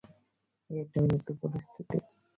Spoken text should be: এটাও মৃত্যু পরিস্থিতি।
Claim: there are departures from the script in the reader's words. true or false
false